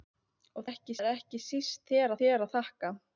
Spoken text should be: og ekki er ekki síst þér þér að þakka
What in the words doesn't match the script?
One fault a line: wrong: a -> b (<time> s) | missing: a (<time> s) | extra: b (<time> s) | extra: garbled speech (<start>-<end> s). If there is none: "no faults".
no faults